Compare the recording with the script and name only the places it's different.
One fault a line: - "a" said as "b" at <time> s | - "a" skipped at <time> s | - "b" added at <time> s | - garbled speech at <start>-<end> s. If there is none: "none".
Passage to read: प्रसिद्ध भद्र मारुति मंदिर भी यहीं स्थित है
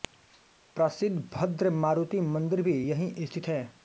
none